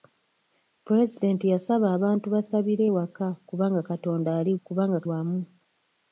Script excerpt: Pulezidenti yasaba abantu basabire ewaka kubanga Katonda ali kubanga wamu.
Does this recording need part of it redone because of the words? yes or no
no